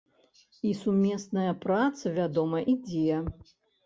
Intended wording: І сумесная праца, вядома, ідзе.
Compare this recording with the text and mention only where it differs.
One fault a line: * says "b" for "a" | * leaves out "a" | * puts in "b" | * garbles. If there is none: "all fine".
all fine